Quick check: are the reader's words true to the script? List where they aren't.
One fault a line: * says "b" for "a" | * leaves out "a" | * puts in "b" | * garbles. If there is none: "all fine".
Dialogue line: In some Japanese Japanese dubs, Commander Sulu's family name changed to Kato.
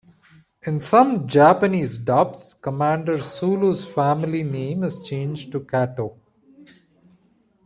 * leaves out "Japanese"
* puts in "is"